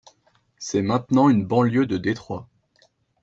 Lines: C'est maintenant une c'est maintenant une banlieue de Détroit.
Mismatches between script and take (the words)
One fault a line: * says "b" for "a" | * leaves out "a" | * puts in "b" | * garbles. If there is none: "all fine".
* leaves out "c'est maintenant une"